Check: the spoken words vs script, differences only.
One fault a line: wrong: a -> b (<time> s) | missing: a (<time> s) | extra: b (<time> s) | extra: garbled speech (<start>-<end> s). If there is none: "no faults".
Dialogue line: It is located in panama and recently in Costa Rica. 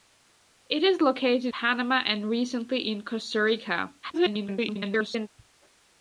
missing: in (1.5 s)
extra: garbled speech (4.0-5.3 s)